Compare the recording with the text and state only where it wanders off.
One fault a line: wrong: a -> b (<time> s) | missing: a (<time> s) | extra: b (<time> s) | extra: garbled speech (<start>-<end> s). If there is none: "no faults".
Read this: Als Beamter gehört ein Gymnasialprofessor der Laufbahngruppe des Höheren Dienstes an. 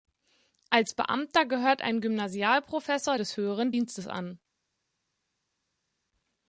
missing: der Laufbahngruppe (3.2 s)